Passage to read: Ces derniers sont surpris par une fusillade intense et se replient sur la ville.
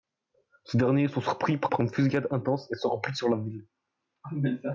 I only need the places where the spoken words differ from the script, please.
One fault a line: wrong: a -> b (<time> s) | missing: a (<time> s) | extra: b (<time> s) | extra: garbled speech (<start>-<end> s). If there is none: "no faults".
extra: par (1.7 s)